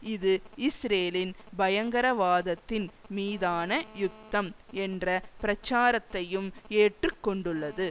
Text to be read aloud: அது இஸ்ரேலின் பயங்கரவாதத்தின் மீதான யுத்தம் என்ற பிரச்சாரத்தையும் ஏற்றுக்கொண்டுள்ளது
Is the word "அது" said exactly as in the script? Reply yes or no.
no